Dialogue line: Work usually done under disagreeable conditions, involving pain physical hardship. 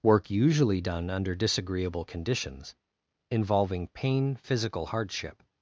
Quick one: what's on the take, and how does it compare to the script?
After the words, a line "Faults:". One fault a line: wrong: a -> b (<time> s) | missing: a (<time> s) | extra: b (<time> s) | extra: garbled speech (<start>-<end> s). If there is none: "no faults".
Work usually done under disagreeable conditions, involving pain physical hardship.
Faults:
no faults